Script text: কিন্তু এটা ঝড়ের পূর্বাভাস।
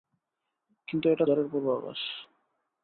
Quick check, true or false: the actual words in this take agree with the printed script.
true